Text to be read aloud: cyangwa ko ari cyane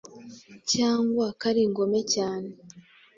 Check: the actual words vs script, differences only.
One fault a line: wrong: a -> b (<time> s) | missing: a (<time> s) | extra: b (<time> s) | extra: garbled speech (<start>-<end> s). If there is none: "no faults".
extra: ingome (1.7 s)